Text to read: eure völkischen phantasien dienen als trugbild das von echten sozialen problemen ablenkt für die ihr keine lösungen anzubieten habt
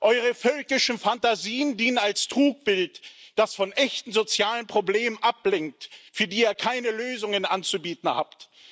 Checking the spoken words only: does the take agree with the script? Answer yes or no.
yes